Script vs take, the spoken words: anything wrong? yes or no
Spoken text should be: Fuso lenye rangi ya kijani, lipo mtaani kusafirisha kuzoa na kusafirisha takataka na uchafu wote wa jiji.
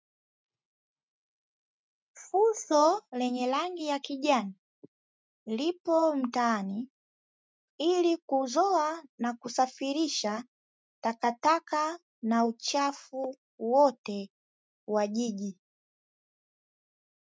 yes